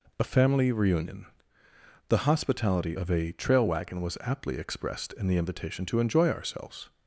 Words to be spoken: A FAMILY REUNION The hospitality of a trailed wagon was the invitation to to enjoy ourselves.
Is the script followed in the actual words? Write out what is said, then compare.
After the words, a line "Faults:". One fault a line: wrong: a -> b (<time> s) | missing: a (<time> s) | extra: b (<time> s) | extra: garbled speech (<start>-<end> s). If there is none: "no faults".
A FAMILY REUNION The hospitality of a trail wagon was aptly expressed in the invitation to enjoy ourselves.
Faults:
wrong: trailed -> trail (3.3 s)
extra: aptly expressed in (4.2 s)
missing: to (6.0 s)